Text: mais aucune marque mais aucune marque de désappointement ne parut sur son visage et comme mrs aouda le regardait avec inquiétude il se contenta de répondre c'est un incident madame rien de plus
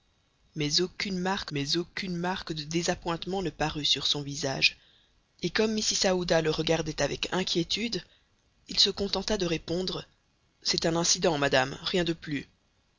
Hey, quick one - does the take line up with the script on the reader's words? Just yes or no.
yes